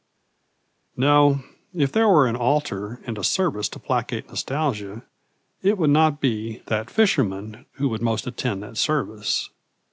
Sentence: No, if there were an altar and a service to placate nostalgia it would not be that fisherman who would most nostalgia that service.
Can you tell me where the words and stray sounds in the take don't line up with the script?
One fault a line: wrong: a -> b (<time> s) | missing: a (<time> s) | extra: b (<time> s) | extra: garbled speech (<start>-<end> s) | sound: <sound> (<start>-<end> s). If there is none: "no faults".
wrong: nostalgia -> attend (8.3 s)